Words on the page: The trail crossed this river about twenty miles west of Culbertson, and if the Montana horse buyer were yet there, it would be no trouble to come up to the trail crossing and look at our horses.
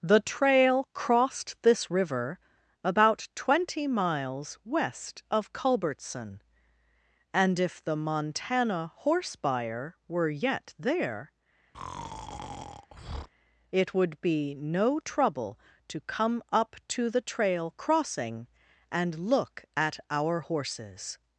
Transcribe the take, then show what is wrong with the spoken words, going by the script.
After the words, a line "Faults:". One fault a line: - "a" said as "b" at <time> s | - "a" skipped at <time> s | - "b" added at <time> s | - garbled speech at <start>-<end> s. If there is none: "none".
The trail crossed this river about twenty miles west of Culbertson, and if the Montana horse buyer were yet there, it would be no trouble to come up to the trail crossing and look at our horses.
Faults:
none